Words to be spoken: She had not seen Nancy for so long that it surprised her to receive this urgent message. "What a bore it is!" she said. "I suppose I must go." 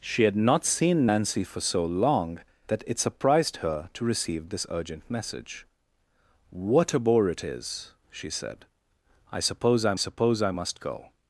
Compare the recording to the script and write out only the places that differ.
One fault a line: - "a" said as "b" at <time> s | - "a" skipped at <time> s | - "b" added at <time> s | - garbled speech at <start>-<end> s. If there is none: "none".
- "suppose I" added at 10.0 s